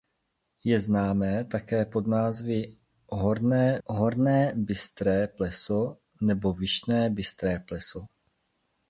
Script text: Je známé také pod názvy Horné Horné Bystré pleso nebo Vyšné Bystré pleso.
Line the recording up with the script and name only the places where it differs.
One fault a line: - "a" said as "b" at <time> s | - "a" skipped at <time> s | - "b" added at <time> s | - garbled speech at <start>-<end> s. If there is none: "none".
none